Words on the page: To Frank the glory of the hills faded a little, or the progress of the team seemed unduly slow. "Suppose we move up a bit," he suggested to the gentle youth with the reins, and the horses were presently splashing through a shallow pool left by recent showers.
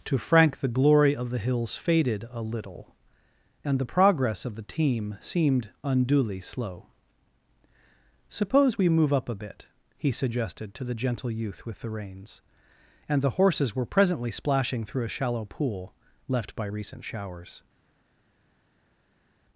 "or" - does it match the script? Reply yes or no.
no